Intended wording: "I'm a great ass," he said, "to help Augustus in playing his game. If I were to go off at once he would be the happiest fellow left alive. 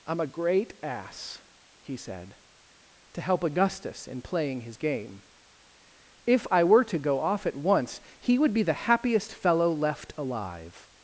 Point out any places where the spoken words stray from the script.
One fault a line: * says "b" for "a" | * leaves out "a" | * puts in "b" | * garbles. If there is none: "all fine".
all fine